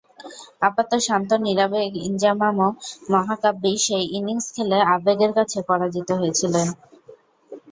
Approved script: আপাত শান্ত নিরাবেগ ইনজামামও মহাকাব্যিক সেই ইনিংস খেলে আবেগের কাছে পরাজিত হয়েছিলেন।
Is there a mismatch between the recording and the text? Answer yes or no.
no